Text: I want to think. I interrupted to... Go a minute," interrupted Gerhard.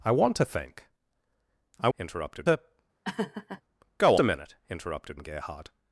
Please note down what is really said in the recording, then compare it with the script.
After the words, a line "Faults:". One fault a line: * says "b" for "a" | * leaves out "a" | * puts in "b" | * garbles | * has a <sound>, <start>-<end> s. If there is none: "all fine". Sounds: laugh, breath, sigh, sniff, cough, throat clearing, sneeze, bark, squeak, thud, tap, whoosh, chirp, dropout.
I want to think. I interrupted to... Go a minute," interrupted Gerhard.
Faults:
* has a laugh, 3.0-3.6 s